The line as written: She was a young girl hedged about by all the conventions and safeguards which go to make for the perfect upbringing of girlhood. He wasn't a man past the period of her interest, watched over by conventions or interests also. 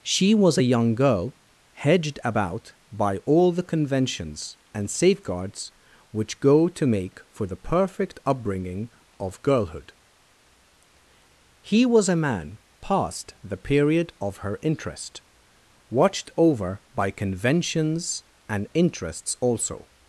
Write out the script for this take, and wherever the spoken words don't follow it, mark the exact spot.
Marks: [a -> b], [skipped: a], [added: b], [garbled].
She was a young girl hedged about by all the conventions and safeguards which go to make for the perfect upbringing of girlhood. He [wasn't -> was] a man past the period of her interest, watched over by conventions [or -> and] interests also.